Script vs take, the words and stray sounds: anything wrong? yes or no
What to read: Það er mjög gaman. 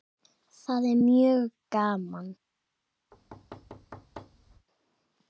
yes